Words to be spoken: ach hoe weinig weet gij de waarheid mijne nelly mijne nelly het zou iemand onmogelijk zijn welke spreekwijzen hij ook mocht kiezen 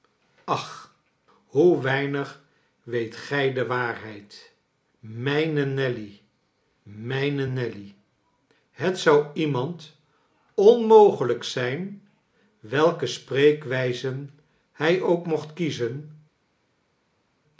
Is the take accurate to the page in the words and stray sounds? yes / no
yes